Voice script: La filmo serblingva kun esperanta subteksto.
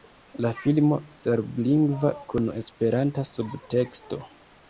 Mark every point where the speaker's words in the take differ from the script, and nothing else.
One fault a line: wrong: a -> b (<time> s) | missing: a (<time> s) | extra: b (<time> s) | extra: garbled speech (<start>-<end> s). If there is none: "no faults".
no faults